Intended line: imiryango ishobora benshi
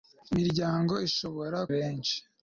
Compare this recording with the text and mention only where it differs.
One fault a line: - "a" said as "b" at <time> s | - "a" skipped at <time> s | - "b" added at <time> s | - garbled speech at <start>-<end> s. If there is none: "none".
none